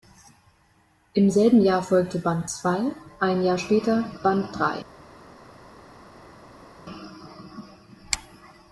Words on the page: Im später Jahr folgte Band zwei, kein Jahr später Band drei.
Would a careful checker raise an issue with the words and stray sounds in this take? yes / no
yes